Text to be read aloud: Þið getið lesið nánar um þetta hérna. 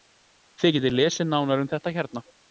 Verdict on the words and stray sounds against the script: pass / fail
pass